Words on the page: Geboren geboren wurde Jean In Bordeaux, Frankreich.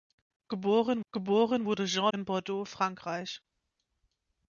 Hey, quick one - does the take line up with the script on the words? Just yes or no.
yes